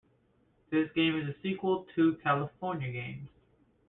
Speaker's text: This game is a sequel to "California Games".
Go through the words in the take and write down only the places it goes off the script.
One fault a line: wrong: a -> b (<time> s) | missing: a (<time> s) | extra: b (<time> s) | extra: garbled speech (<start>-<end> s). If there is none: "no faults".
no faults